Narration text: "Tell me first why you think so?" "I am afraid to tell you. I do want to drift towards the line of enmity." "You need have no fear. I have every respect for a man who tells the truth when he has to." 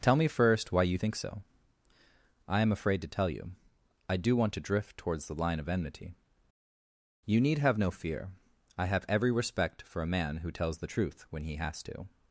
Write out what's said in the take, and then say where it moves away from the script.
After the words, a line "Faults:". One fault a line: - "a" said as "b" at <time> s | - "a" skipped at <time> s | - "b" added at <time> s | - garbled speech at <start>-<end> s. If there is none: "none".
"Tell me first why you think so?" "I am afraid to tell you. I do want to drift towards the line of enmity." "You need have no fear. I have every respect for a man who tells the truth when he has to."
Faults:
none